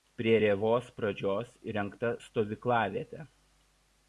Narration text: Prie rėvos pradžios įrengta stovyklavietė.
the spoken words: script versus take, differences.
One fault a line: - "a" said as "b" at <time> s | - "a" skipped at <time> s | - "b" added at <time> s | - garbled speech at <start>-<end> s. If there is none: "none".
none